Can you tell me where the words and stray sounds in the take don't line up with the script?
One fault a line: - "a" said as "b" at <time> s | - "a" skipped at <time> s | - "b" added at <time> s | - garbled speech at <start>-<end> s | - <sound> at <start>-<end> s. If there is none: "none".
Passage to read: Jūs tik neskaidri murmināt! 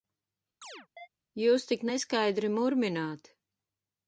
- chirp at 0.6-1.1 s